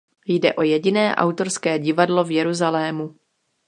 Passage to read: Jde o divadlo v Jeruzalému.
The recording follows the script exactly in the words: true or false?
false